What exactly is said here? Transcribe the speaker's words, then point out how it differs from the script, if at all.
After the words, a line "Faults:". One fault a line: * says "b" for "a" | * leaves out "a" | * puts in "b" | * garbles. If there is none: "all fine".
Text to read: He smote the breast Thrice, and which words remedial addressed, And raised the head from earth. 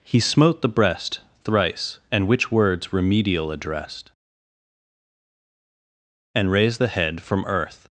He smote the breast Thrice, and which words remedial addressed, And raised the head from earth.
Faults:
all fine